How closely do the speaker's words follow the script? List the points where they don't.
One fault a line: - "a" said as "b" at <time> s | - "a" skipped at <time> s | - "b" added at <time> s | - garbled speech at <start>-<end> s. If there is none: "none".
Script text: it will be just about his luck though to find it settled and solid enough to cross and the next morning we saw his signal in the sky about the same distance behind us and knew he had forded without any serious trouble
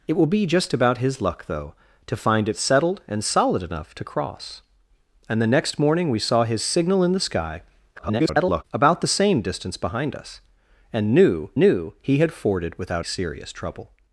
- garbled speech at 7.9-8.6 s
- "knew" added at 11.6 s
- "any" skipped at 13.1 s